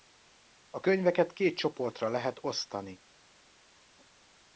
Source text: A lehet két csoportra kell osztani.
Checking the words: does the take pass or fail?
fail